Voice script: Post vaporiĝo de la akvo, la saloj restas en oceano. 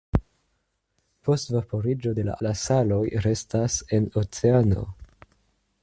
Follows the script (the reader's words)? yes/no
no